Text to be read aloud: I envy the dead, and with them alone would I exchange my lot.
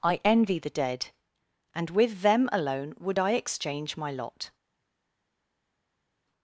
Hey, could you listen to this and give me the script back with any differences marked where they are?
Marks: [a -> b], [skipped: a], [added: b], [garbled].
I envy the dead, and with them alone would I exchange my lot.